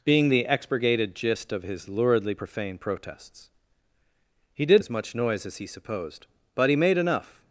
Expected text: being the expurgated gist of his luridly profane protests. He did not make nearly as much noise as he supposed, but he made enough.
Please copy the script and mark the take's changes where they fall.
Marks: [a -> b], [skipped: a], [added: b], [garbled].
being the expurgated gist of his luridly profane protests. He did [skipped: not make nearly] as much noise as he supposed, but he made enough.